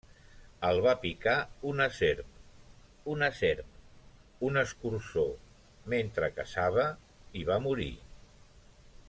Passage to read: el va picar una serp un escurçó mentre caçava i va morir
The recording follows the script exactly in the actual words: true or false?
false